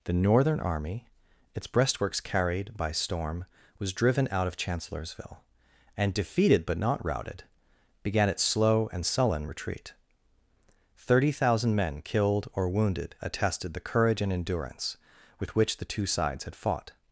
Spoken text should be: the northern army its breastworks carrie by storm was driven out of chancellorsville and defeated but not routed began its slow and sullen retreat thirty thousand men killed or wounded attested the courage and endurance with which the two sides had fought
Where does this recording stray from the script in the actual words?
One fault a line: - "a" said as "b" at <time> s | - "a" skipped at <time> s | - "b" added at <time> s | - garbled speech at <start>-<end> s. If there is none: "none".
- "carrie" said as "carried" at 2.2 s